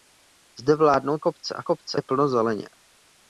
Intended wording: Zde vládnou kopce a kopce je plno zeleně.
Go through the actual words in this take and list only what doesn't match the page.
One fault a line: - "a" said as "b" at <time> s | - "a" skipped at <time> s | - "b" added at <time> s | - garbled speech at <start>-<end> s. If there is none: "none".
none